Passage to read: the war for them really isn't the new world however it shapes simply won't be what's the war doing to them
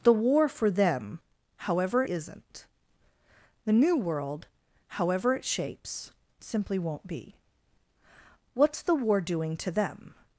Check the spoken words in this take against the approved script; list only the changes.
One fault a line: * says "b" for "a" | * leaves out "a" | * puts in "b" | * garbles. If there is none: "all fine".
* says "however" for "really"